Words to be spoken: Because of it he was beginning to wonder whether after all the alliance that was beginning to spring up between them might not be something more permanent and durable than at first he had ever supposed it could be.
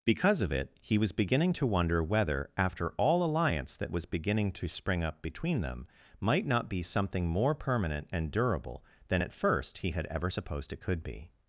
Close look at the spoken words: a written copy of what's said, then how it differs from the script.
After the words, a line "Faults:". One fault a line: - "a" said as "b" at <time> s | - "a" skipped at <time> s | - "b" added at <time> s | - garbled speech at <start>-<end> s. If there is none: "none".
Because of it he was beginning to wonder whether after all alliance that was beginning to spring up between them might not be something more permanent and durable than at first he had ever supposed it could be.
Faults:
- "the" skipped at 3.2 s